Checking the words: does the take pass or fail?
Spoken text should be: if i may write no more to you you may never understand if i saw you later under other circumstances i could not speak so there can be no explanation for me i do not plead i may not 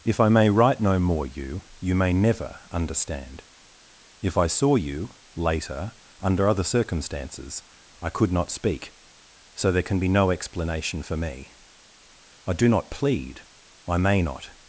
fail